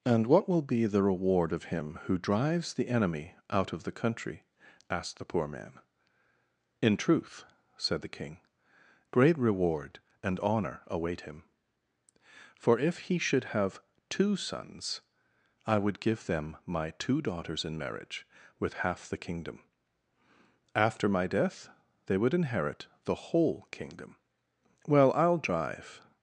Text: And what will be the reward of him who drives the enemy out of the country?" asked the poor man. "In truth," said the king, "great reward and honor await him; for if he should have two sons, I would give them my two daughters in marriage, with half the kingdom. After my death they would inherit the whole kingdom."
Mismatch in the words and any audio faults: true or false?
true